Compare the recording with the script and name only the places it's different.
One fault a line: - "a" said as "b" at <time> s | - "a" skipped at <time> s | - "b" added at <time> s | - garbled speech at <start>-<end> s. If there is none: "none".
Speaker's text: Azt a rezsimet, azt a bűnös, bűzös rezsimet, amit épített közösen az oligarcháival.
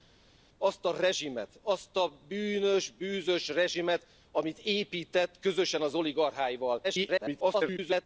- garbled speech at 6.8-8.1 s